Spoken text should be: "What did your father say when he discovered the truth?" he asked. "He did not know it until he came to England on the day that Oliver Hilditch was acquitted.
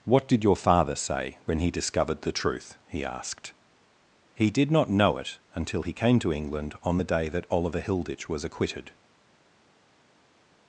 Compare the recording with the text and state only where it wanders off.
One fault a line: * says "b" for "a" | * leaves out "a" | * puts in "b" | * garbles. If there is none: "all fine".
all fine